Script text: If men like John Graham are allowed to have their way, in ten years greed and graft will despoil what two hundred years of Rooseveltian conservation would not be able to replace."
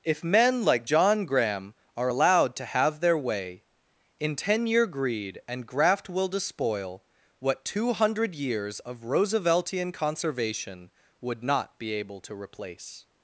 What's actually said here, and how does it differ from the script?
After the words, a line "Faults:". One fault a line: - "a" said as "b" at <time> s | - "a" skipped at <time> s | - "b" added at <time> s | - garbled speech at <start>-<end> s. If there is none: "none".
If men like John Graham are allowed to have their way, in ten year greed and graft will despoil what two hundred years of Rooseveltian conservation would not be able to replace."
Faults:
- "years" said as "year" at 4.7 s